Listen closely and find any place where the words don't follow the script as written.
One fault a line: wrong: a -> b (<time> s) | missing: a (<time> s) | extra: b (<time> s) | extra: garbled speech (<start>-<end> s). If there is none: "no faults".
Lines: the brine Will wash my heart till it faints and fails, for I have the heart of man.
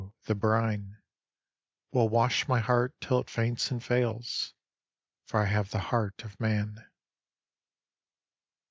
no faults